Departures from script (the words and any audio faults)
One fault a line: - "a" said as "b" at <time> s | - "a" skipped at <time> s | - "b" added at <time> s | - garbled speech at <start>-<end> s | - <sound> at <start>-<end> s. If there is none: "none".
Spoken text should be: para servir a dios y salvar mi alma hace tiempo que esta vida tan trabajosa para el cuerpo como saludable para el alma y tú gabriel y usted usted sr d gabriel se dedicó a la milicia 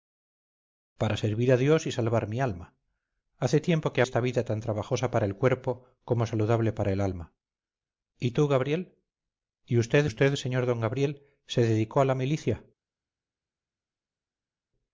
none